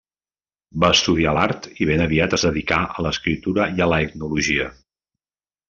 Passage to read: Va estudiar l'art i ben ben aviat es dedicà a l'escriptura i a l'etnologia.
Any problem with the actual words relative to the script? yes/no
yes